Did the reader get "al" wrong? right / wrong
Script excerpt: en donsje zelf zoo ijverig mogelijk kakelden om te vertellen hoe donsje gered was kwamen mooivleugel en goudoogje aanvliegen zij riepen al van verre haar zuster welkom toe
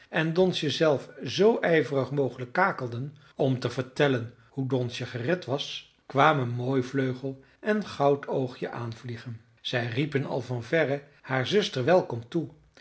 right